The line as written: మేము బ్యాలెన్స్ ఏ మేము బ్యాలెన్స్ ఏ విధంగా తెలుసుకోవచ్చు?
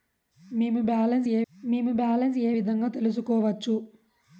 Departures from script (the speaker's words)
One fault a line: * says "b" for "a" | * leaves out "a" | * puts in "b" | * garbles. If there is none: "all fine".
all fine